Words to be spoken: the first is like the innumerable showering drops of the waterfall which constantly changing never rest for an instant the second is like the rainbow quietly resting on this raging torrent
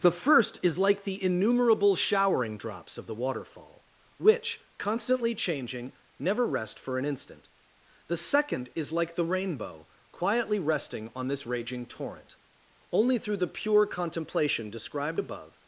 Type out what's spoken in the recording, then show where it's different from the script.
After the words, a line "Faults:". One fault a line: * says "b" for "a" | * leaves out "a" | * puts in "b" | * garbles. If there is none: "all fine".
the first is like the innumerable showering drops of the waterfall which constantly changing never rest for an instant the second is like the rainbow quietly resting on this raging torrent only through the pure contemplation described above
Faults:
* puts in "only through the pure contemplation described above"